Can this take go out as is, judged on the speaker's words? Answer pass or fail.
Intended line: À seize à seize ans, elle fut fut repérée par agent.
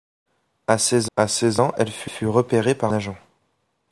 pass